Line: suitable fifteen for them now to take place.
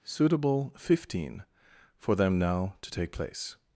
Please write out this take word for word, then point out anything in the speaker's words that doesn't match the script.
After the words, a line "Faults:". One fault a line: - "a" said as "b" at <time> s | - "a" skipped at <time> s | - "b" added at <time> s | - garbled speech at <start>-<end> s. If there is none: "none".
suitable fifteen for them now to take place.
Faults:
none